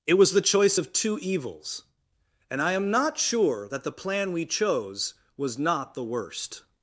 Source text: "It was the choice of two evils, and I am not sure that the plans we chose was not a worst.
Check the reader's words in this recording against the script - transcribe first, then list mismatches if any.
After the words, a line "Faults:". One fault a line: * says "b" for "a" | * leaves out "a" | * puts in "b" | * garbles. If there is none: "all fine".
"It was the choice of two evils, and I am not sure that the plan we chose was not the worst.
Faults:
* says "plan" for "plans"
* says "the" for "a"